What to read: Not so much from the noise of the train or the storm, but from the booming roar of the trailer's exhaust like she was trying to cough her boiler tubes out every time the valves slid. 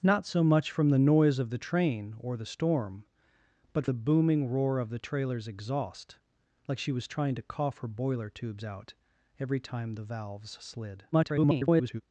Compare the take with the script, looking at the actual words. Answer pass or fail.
fail